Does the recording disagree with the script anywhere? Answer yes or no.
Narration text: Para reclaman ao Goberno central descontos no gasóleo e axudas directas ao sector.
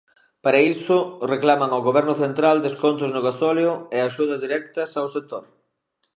yes